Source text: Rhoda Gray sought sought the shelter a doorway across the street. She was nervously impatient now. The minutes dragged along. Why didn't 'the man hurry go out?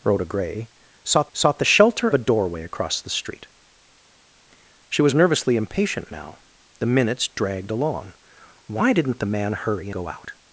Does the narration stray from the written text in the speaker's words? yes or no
no